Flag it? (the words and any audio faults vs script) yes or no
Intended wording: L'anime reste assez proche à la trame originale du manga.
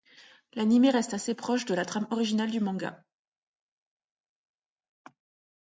yes